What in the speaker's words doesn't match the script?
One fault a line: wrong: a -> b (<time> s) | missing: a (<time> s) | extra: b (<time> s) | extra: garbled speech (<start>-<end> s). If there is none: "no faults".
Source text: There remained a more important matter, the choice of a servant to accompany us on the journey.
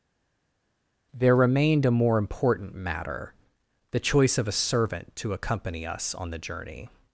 no faults